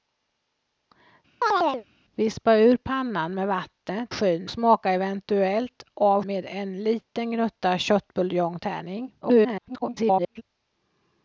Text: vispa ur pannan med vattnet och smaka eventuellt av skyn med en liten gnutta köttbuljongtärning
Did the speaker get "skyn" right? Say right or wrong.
wrong